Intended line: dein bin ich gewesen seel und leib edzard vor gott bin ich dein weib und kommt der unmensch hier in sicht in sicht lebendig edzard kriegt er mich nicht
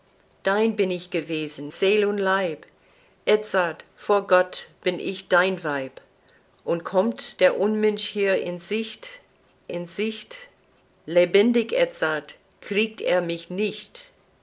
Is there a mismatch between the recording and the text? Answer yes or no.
no